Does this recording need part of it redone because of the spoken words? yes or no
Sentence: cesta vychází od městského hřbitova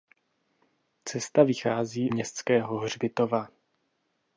yes